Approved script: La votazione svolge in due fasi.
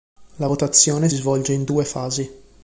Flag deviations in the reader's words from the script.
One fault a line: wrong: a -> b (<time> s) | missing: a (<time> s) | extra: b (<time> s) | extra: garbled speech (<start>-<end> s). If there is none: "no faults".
no faults